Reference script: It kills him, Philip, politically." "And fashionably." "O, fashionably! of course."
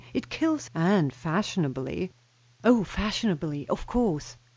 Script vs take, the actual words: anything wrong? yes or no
yes